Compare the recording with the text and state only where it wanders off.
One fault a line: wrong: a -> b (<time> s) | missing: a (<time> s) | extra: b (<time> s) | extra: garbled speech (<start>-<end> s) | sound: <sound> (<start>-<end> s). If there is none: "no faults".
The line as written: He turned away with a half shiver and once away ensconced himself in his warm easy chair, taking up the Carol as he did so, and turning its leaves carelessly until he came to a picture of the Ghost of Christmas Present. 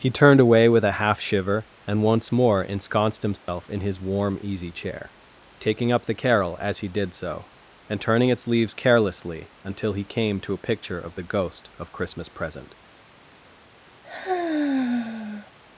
wrong: away -> more (2.3 s)
sound: dropout (3.4-3.5 s)
sound: sigh (14.0-15.5 s)